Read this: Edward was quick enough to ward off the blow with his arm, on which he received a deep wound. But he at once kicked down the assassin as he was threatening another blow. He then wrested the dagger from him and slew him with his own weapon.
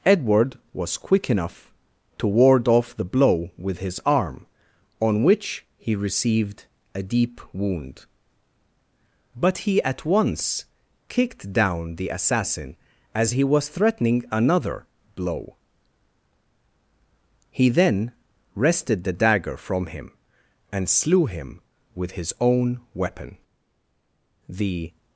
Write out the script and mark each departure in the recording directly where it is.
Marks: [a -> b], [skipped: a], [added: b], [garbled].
Edward was quick enough to ward off the blow with his arm, on which he received a deep wound. But he at once kicked down the assassin as he was threatening another blow. He then wrested the dagger from him and slew him with his own weapon. [added: The]